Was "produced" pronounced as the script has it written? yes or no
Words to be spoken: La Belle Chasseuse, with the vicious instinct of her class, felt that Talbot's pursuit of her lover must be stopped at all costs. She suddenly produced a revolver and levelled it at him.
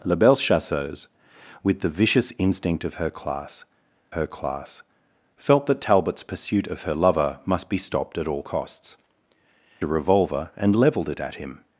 no